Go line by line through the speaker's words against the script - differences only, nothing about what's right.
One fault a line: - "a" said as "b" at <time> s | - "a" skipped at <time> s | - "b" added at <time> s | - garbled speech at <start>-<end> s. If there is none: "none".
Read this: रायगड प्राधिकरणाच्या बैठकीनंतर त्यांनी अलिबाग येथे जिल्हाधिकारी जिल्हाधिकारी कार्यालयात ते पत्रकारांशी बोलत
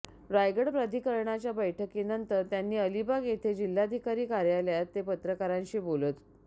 - "जिल्हाधिकारी" skipped at 4.3 s